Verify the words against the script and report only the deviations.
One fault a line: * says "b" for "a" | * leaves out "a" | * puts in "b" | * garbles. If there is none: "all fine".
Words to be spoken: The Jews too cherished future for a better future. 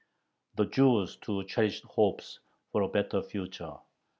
* says "hopes" for "future"